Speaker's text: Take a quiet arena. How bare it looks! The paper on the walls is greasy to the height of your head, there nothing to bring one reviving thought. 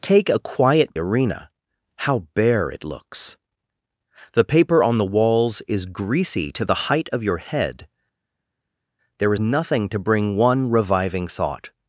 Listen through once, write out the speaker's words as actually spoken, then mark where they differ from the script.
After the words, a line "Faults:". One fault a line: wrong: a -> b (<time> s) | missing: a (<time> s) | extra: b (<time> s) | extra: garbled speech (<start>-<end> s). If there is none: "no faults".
Take a quiet arena. How bare it looks! The paper on the walls is greasy to the height of your head, there nothing to bring one reviving thought.
Faults:
no faults